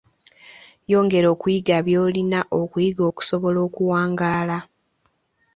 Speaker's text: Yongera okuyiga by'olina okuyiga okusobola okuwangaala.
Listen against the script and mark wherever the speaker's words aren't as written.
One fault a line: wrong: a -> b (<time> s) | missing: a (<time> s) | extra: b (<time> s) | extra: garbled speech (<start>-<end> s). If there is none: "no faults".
no faults